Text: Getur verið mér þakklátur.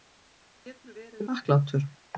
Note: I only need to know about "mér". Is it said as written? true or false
false